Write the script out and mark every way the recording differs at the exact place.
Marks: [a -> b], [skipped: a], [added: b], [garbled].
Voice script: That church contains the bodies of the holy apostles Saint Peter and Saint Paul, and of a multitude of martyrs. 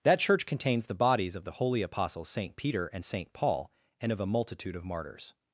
That church contains the bodies of the holy apostles Saint Peter and Saint Paul, and of a multitude of martyrs.